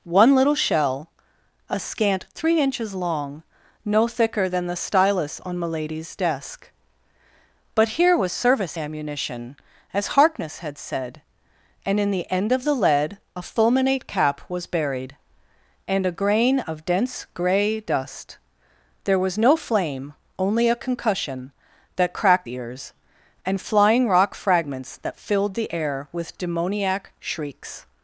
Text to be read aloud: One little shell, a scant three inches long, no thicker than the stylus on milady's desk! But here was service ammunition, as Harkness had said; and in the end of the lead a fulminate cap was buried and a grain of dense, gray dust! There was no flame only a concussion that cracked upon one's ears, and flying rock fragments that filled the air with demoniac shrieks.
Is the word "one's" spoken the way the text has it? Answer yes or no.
no